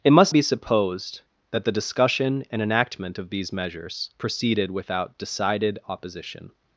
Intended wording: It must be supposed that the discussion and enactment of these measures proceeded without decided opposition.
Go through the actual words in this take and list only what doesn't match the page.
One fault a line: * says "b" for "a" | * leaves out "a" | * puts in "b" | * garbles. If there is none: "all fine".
all fine